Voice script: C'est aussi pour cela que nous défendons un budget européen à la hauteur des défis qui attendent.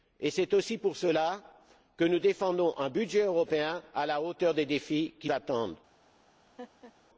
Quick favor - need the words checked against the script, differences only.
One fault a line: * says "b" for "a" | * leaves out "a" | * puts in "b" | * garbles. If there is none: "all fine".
all fine